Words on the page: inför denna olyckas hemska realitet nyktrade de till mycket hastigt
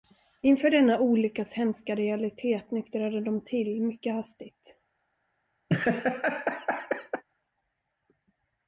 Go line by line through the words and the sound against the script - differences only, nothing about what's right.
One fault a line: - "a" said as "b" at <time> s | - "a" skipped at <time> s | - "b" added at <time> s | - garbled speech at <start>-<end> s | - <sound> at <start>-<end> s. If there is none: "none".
- laugh at 5.7-7.2 s